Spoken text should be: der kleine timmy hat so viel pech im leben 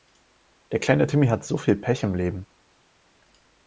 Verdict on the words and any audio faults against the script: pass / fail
pass